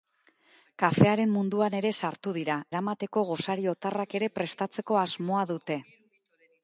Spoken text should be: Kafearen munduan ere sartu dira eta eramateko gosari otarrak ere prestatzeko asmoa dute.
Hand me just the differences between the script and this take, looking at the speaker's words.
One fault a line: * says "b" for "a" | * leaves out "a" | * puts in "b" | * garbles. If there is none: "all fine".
* leaves out "eta"